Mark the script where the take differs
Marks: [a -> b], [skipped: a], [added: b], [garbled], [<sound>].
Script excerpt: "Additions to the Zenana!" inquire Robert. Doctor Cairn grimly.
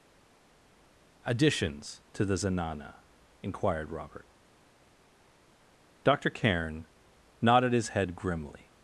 "Additions to the Zenana!" [inquire -> inquired] Robert. Doctor Cairn [added: nodded his head] grimly.